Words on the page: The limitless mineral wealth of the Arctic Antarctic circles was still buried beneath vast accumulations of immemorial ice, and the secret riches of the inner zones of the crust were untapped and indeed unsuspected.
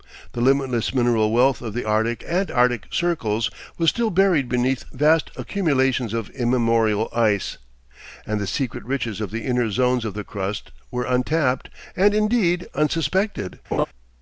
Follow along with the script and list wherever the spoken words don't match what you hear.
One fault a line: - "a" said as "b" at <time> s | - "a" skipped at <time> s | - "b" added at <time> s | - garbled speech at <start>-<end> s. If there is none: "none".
none